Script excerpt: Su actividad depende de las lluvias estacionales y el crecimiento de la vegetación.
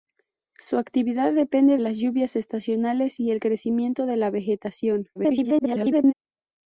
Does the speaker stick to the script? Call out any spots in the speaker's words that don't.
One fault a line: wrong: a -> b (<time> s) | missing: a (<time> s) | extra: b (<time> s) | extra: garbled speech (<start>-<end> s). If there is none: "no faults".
missing: de (1.8 s)
extra: garbled speech (5.2-6.1 s)